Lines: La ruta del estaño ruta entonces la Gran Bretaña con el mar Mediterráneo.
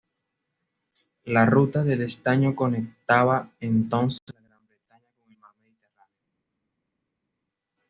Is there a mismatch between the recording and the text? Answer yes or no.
yes